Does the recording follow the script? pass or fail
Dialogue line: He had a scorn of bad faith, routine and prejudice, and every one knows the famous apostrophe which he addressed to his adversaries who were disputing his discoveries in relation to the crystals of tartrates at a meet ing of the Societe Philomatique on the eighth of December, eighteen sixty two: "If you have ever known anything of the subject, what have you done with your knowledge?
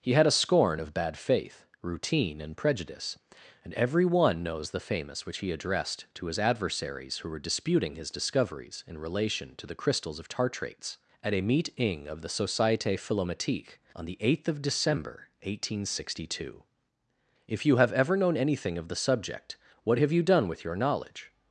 fail